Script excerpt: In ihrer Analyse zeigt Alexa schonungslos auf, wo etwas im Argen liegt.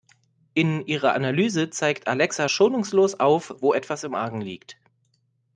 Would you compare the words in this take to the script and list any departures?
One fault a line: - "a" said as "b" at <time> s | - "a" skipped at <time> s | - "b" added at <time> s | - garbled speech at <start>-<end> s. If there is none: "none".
none